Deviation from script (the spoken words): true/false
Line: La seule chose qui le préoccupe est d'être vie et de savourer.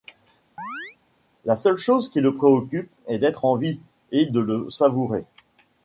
true